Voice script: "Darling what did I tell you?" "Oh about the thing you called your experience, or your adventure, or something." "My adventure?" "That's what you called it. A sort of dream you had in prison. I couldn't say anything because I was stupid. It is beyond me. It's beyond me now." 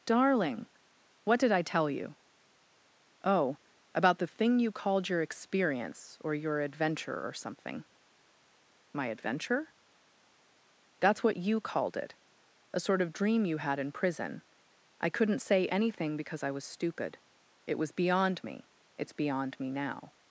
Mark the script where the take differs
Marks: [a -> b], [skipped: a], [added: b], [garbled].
"Darling what did I tell you?" "Oh about the thing you called your experience, or your adventure, or something." "My adventure?" "That's what you called it. A sort of dream you had in prison. I couldn't say anything because I was stupid. It [is -> was] beyond me. It's beyond me now."